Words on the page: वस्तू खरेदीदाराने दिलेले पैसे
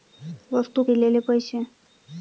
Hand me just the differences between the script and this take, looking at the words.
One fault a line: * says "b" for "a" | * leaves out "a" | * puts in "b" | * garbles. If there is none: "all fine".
* leaves out "खरेदीदाराने"